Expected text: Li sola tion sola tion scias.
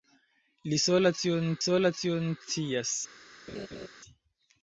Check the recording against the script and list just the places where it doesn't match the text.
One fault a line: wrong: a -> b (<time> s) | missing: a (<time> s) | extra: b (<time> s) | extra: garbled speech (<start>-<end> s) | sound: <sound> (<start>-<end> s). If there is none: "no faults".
sound: laugh (3.5-3.9 s)